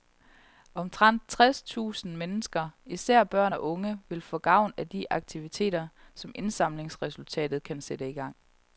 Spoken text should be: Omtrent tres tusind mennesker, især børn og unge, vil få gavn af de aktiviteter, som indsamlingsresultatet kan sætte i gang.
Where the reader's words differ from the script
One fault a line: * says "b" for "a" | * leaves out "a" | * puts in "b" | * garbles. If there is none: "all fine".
all fine